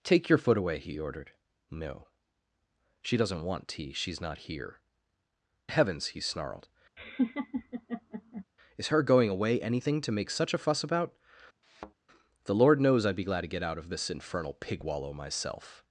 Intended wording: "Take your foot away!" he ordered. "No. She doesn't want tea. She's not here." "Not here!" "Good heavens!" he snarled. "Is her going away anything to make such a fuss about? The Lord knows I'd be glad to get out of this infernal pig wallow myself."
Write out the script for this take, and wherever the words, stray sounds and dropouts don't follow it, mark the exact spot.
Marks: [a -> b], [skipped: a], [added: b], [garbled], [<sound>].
"Take your foot away!" he ordered. "No. She doesn't want tea. She's not here." [skipped: "Not here!" "Good] heavens!" he snarled. [laugh] "Is her going away anything to make such a fuss about? [thud] The Lord knows I'd be glad to get out of this infernal pig wallow myself."